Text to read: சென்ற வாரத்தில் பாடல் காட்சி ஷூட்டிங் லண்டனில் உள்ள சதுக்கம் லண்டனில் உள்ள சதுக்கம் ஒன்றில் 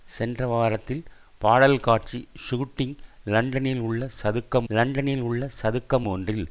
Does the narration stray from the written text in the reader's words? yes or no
no